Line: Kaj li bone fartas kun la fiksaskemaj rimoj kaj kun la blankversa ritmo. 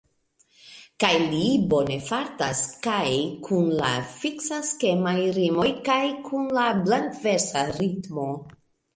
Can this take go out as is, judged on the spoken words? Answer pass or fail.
fail